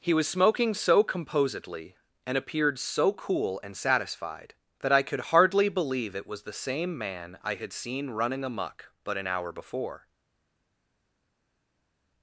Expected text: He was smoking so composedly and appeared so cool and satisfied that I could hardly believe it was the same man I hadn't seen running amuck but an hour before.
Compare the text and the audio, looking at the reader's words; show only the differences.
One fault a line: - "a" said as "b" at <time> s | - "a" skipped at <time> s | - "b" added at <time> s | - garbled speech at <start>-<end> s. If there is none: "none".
- "hadn't" said as "had" at 7.5 s